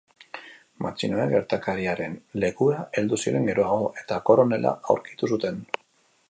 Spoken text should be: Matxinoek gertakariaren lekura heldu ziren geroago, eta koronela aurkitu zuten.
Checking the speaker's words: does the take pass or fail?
pass